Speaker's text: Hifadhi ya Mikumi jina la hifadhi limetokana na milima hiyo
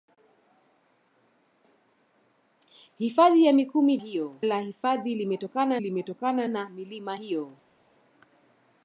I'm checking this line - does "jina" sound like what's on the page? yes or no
no